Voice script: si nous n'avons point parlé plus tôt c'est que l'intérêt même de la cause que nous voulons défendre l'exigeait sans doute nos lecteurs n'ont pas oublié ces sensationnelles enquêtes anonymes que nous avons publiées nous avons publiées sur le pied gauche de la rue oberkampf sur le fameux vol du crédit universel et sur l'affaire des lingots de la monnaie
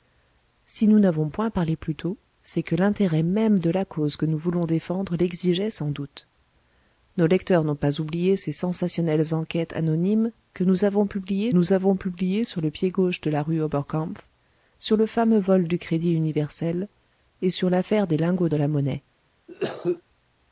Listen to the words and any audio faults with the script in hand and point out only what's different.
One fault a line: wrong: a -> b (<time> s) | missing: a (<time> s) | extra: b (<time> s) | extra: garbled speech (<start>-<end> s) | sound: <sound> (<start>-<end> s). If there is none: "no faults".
sound: cough (19.5-20.0 s)